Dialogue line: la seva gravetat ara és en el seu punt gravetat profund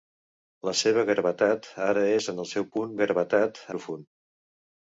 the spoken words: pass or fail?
pass